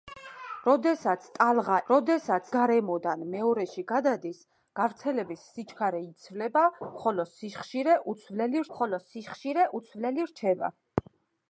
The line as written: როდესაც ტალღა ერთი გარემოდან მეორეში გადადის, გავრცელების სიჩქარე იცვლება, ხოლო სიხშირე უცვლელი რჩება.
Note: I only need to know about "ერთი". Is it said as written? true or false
false